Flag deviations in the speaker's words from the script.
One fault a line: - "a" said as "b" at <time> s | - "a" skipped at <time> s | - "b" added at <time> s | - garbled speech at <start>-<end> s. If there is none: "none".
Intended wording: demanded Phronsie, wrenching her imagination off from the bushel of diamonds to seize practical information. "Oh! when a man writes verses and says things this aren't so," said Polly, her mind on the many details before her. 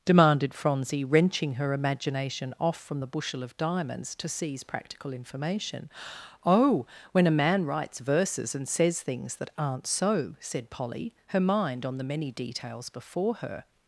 - "this" said as "that" at 9.4 s